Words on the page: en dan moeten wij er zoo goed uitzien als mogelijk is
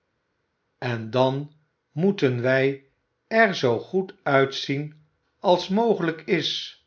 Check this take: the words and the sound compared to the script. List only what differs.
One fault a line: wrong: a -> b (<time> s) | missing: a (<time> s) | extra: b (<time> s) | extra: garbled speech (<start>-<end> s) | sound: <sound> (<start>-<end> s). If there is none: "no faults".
no faults